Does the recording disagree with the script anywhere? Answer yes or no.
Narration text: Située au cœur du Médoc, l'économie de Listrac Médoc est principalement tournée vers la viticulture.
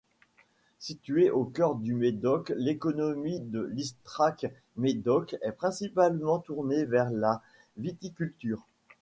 no